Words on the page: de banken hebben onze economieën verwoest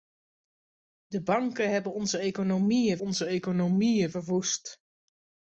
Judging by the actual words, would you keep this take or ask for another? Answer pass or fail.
fail